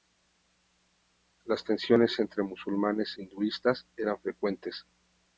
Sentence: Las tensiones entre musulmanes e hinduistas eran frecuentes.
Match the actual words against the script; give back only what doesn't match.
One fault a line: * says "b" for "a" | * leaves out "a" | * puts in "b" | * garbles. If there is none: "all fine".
* leaves out "e"